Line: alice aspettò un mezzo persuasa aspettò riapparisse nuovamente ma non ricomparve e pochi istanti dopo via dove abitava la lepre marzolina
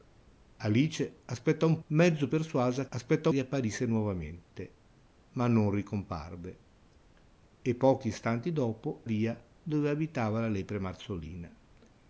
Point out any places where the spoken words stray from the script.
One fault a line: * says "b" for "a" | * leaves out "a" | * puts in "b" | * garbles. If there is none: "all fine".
all fine